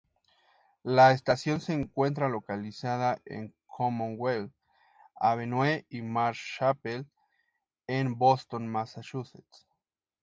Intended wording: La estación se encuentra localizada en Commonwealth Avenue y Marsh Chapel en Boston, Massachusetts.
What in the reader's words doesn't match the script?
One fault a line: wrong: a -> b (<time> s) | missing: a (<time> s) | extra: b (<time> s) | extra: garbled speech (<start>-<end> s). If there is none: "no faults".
no faults